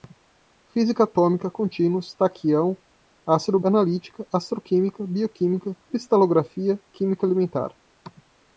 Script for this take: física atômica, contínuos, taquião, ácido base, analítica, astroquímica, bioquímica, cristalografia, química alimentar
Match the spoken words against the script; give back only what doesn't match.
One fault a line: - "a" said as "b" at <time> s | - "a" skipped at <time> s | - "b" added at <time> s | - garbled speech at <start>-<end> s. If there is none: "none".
- "base" skipped at 3.6 s